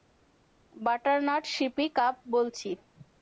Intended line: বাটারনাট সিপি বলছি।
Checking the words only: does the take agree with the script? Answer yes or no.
no